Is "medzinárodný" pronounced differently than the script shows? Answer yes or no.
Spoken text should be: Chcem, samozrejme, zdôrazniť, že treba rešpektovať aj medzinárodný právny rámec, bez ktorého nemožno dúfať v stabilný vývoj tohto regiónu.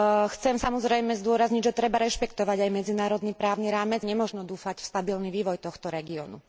no